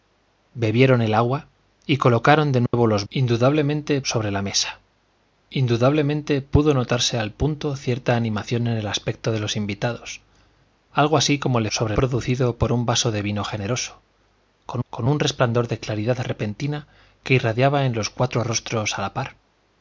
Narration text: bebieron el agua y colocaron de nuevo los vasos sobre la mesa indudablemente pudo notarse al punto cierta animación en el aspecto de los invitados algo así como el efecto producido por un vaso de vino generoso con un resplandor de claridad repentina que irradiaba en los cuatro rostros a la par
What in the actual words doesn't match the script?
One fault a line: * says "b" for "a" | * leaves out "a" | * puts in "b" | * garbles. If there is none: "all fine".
* says "indudablemente" for "vasos"
* says "sobre" for "efecto"
* puts in "con"